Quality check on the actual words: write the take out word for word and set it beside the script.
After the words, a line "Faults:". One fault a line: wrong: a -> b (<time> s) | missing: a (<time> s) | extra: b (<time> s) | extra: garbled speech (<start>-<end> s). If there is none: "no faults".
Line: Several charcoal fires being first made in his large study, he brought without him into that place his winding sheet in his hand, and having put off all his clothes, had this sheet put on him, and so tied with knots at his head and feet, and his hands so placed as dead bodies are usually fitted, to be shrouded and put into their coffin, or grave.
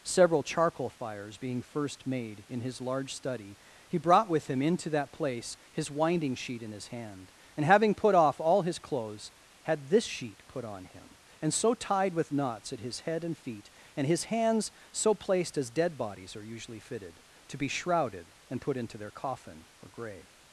Several charcoal fires being first made in his large study, he brought with him into that place his winding sheet in his hand, and having put off all his clothes, had this sheet put on him, and so tied with knots at his head and feet, and his hands so placed as dead bodies are usually fitted, to be shrouded and put into their coffin, or grave.
Faults:
wrong: without -> with (4.3 s)